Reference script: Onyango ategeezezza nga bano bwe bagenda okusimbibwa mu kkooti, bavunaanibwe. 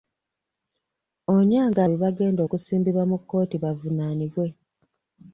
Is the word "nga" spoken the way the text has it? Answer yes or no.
no